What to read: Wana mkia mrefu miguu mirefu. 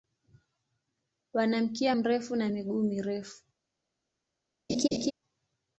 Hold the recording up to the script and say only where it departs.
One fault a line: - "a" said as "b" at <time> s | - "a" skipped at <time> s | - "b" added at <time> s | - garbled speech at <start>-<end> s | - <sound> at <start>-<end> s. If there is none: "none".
- "na" added at 2.4 s
- laugh at 4.7-5.1 s